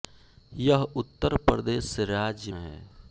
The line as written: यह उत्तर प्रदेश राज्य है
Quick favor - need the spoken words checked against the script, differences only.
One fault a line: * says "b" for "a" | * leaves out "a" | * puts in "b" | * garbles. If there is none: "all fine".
all fine